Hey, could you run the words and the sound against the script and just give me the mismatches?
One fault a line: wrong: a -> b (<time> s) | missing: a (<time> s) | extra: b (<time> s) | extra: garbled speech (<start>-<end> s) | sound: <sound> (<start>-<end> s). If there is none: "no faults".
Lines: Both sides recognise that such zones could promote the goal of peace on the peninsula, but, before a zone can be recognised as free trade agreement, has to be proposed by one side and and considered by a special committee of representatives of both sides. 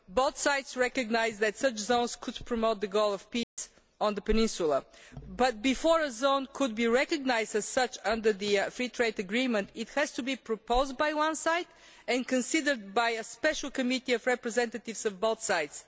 sound: dropout (3.4-3.6 s)
extra: such under the (7.7 s)
extra: it (9.8 s)
missing: and (12.3 s)